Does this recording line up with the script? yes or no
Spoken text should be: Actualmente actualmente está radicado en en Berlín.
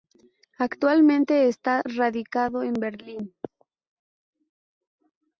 no